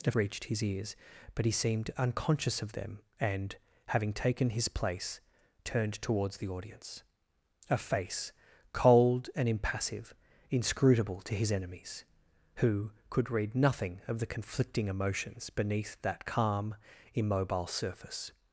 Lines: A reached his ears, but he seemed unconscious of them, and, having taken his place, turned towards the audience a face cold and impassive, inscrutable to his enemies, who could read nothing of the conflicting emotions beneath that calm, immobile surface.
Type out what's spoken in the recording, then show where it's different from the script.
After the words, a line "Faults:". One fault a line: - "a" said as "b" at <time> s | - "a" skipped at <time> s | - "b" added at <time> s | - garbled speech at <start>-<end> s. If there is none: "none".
A reached his ears, but he seemed unconscious of them, and, having taken his place, turned towards the audience a face cold and impassive, inscrutable to his enemies, who could read nothing of the conflicting emotions beneath that calm, immobile surface.
Faults:
none